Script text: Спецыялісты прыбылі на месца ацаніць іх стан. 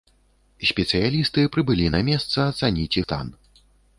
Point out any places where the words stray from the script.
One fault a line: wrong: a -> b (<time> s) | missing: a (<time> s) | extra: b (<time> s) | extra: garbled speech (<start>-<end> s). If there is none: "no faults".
missing: іх (3.0 s)